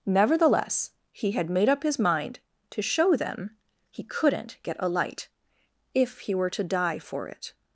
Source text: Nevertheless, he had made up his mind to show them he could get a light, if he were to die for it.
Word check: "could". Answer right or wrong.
wrong